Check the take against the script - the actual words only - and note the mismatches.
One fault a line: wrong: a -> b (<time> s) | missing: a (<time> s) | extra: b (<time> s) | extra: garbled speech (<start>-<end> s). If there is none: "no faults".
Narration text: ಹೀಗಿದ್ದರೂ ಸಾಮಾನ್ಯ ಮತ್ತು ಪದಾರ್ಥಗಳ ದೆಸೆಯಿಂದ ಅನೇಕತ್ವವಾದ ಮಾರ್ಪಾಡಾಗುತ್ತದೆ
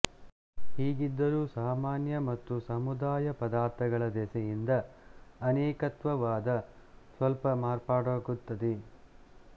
extra: ಸಮುದಾಯ (2.7 s)
extra: ಸ್ವಲ್ಪ (7.2 s)